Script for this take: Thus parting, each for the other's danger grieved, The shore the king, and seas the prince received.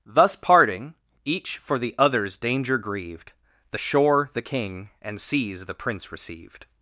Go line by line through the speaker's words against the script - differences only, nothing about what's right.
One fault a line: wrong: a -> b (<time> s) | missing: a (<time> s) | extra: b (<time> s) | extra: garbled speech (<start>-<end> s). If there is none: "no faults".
no faults